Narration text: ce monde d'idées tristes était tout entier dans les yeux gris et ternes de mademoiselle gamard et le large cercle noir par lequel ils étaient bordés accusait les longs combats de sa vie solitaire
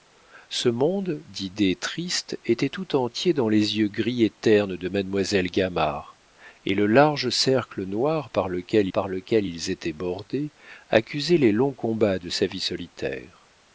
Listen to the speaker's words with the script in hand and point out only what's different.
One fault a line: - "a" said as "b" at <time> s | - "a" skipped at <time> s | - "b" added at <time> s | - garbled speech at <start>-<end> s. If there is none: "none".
- "par lequel" added at 8.9 s